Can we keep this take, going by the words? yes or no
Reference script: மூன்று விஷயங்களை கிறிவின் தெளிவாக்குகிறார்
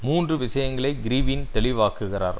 yes